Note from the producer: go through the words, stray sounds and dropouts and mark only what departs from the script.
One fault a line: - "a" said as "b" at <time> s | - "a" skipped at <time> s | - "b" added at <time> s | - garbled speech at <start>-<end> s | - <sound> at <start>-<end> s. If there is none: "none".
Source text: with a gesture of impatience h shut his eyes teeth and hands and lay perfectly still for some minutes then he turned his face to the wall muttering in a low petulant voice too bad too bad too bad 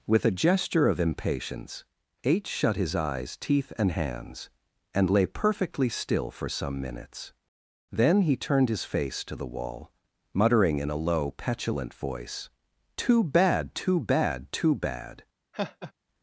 - laugh at 15.5-15.9 s